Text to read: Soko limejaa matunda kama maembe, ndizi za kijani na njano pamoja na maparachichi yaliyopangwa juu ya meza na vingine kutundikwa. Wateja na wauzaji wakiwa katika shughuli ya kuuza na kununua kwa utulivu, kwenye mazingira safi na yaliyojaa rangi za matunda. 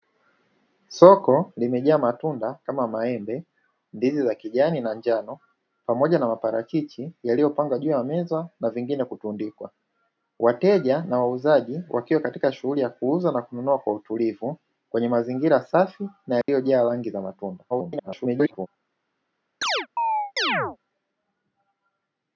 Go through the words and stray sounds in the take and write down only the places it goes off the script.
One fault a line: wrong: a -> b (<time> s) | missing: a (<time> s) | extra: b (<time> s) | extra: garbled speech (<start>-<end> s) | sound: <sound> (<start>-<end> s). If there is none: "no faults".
sound: dropout (16.4-16.5 s)
extra: garbled speech (17.7-18.7 s)
sound: chirp (19.6-20.8 s)